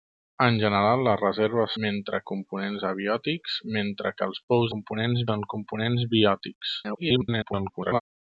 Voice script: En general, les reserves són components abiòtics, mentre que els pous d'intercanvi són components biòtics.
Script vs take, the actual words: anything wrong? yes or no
yes